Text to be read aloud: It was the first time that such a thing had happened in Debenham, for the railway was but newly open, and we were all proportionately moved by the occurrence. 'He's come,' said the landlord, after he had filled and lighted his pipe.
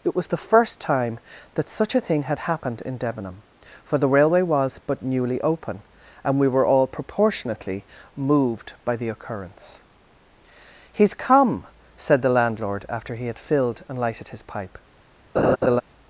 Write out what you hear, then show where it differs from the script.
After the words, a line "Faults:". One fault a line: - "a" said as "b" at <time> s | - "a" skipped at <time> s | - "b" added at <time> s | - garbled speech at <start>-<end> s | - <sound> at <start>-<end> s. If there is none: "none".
It was the first time that such a thing had happened in Debenham, for the railway was but newly open, and we were all proportionately moved by the occurrence. 'He's come,' said the landlord, after he had filled and lighted his pipe.
Faults:
- laugh at 15.3-15.8 s